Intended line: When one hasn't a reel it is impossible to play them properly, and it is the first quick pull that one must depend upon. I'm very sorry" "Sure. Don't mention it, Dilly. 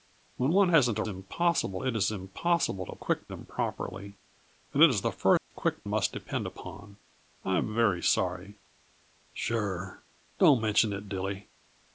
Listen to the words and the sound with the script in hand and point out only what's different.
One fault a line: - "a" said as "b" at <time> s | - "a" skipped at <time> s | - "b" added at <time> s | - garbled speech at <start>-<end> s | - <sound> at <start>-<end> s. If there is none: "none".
- "reel" said as "impossible" at 1.1 s
- "play" said as "quick" at 3.0 s
- dropout at 5.4-5.5 s
- "pull that one" skipped at 5.9 s